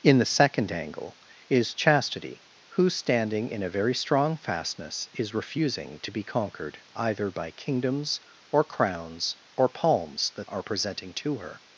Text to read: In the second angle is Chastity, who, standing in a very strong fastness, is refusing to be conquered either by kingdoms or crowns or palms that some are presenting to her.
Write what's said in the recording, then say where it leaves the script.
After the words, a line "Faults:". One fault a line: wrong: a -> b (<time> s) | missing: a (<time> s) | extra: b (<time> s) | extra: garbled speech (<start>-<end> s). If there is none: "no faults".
In the second angle is Chastity, who, standing in a very strong fastness, is refusing to be conquered either by kingdoms or crowns or palms that are presenting to her.
Faults:
missing: some (10.5 s)